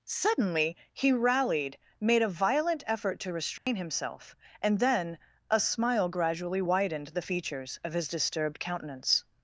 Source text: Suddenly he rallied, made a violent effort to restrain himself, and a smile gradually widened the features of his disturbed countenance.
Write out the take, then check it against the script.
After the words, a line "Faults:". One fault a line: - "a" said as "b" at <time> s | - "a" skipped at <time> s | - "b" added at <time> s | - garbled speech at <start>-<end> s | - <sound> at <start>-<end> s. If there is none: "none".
Suddenly he rallied, made a violent effort to restrain himself, and then a smile gradually widened the features of his disturbed countenance.
Faults:
- dropout at 3.6-3.7 s
- "then" added at 4.8 s